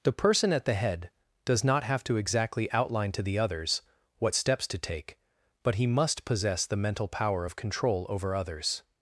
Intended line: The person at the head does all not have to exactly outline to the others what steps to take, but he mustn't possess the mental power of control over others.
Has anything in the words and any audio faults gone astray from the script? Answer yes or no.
yes